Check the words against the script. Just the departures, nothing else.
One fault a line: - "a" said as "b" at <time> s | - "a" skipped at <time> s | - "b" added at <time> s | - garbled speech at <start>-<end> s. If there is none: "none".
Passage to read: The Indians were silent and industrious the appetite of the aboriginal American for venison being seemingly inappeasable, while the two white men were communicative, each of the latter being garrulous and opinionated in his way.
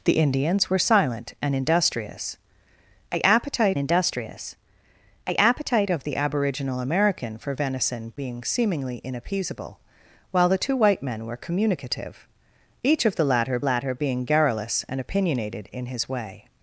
- "industrious the appetite" added at 3.8 s
- "latter" added at 13.6 s